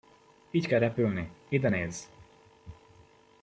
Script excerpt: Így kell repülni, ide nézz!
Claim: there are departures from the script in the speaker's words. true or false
false